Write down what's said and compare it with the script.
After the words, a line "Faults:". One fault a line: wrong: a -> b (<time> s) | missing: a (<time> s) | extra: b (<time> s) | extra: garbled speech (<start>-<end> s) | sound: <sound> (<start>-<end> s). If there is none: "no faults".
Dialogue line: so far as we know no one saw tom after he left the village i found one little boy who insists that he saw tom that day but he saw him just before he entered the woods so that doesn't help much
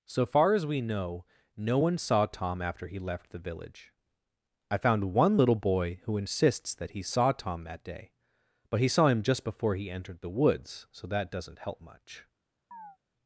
so far as we know no one saw tom after he left the village i found one little boy who insists that he saw tom that day but he saw him just before he entered the woods so that doesn't help much
Faults:
sound: chirp (12.7-13.0 s)